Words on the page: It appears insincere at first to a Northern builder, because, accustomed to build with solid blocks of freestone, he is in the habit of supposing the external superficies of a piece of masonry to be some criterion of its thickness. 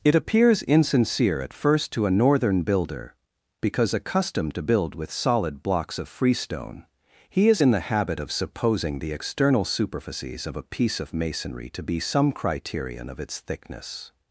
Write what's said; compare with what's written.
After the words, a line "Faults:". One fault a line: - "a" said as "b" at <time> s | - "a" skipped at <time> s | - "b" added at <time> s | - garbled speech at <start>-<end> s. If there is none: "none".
It appears insincere at first to a Northern builder, because, accustomed to build with solid blocks of freestone, he is in the habit of supposing the external superficies of a piece of masonry to be some criterion of its thickness.
Faults:
none